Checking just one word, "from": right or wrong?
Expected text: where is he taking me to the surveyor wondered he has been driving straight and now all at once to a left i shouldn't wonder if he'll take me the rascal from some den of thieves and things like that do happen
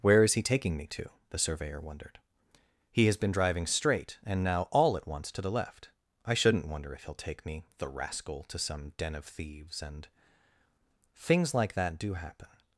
wrong